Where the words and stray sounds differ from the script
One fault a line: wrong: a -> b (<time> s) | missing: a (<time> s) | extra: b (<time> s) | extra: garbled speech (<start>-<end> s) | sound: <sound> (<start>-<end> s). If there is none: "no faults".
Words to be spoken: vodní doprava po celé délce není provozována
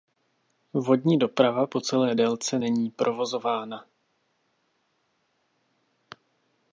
no faults